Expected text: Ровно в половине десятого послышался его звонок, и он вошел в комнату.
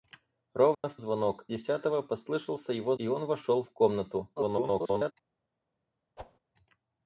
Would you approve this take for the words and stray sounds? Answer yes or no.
no